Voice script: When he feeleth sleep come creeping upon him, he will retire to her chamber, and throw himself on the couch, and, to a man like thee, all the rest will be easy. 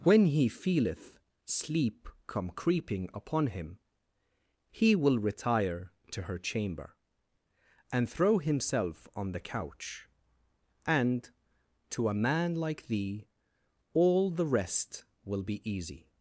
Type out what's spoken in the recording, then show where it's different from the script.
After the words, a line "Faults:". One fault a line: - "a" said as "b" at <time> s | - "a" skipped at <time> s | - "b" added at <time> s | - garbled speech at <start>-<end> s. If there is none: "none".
When he feeleth sleep come creeping upon him, he will retire to her chamber, and throw himself on the couch, and, to a man like thee, all the rest will be easy.
Faults:
none